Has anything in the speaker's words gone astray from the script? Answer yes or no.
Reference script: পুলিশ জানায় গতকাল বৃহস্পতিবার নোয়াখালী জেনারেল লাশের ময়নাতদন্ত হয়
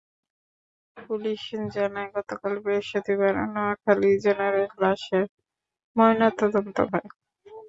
no